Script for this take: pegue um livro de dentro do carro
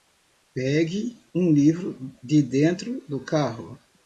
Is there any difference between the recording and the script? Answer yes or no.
no